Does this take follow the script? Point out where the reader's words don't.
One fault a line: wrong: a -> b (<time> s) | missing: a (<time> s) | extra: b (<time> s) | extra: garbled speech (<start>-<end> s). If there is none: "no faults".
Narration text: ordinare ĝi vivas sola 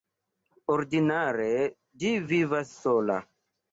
no faults